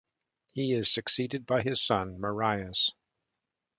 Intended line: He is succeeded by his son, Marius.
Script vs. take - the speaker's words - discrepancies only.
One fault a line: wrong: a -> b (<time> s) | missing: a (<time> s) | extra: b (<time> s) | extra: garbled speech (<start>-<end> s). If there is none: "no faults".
no faults